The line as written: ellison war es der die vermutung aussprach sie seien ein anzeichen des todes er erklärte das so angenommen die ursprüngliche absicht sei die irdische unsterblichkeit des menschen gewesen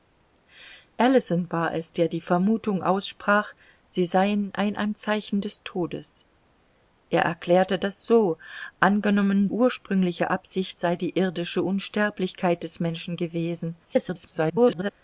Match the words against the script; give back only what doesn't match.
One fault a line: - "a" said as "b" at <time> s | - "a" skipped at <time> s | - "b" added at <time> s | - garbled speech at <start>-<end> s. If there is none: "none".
- "die" skipped at 9.5 s
- garbled speech at 13.8-14.9 s